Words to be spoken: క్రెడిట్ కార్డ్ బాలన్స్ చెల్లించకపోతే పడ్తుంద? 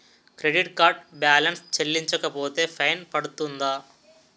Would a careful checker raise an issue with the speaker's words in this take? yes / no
yes